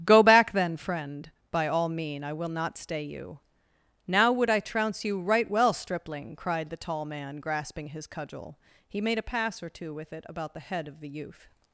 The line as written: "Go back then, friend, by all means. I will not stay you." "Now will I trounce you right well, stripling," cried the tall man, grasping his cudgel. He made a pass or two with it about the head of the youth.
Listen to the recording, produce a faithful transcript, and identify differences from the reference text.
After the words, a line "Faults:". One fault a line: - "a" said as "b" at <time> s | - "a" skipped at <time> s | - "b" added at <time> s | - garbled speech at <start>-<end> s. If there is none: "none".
"Go back then, friend, by all mean. I will not stay you." "Now would I trounce you right well, stripling," cried the tall man, grasping his cudgel. He made a pass or two with it about the head of the youth.
Faults:
- "means" said as "mean" at 1.9 s
- "will" said as "would" at 4.3 s